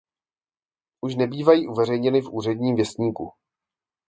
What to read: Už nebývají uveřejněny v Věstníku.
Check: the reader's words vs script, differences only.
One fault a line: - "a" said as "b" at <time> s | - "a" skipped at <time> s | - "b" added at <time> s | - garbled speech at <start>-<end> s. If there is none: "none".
- "Úředním" added at 2.3 s